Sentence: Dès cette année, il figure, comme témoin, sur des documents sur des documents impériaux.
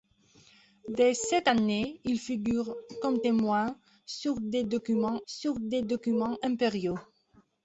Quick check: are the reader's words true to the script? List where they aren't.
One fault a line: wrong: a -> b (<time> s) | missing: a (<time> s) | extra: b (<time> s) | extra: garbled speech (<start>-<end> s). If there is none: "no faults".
no faults